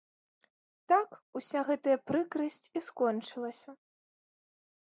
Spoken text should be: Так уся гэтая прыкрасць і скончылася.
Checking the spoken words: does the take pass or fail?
pass